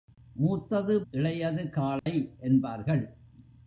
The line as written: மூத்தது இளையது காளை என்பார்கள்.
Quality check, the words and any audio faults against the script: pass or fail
fail